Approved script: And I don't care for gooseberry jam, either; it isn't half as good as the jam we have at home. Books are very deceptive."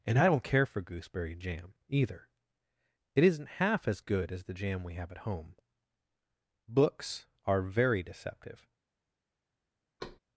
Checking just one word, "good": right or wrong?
right